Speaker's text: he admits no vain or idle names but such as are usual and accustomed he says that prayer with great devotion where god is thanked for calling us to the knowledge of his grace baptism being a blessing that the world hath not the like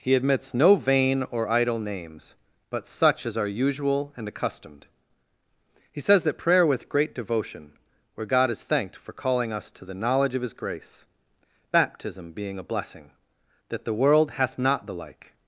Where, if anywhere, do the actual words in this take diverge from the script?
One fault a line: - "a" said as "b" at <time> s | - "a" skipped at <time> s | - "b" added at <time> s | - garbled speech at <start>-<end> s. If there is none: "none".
none